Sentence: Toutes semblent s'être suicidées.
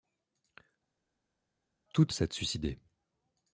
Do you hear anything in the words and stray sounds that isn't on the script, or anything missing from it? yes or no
yes